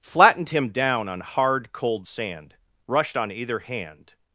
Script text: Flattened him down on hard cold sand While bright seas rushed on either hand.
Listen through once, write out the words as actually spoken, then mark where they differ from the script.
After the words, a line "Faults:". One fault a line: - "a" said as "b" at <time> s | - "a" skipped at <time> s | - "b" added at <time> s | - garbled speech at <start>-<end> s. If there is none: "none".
Flattened him down on hard cold sand rushed on either hand.
Faults:
- "While bright seas" skipped at 2.5 s